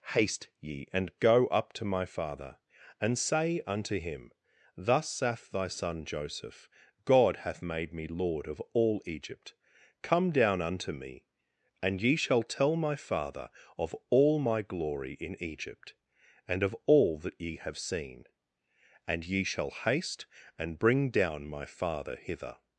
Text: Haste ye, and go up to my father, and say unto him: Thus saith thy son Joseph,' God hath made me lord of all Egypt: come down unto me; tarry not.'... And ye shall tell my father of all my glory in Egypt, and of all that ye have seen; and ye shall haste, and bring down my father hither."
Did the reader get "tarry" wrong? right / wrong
wrong